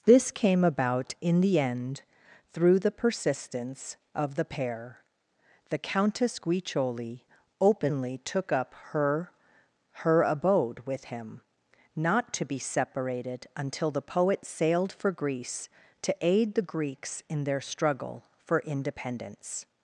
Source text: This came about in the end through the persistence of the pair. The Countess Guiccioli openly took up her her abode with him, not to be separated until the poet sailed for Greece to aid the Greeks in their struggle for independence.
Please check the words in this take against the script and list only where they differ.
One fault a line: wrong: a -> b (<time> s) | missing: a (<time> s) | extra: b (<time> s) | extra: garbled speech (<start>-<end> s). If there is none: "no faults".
no faults